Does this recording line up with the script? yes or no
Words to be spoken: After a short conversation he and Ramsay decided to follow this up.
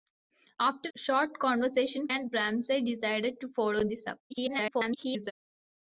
no